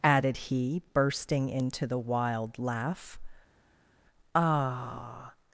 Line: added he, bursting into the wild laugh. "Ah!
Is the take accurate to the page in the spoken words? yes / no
yes